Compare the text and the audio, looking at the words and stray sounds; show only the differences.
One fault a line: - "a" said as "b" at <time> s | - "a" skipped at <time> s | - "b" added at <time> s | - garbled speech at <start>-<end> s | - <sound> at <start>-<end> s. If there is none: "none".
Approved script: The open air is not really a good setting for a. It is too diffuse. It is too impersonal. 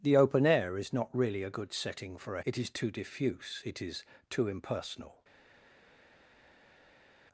none